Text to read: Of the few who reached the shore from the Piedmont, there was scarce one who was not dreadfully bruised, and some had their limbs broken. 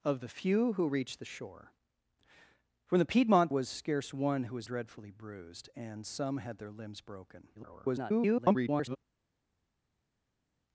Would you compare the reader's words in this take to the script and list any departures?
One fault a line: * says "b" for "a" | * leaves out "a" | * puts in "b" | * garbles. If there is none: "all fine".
* leaves out "there"
* leaves out "not"
* garbles